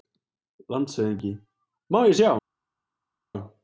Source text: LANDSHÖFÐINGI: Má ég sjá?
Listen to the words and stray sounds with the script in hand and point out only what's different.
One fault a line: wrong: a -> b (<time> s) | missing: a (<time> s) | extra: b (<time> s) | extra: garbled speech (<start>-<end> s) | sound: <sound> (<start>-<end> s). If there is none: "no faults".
no faults